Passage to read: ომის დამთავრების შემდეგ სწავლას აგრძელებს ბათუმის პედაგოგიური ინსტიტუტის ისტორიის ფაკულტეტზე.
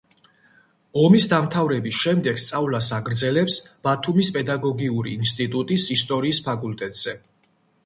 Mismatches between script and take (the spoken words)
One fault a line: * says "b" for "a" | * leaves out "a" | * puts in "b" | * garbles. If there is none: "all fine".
all fine